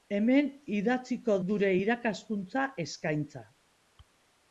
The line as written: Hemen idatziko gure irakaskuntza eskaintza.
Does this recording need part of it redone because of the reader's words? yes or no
no